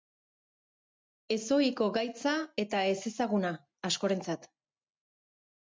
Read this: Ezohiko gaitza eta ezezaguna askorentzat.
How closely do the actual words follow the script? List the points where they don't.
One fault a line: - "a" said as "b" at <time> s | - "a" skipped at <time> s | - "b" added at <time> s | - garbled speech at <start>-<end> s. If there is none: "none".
none